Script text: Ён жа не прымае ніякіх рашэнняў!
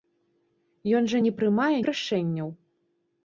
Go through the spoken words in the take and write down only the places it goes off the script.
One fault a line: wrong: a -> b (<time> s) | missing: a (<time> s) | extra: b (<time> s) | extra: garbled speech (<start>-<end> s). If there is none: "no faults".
missing: ніякіх (1.8 s)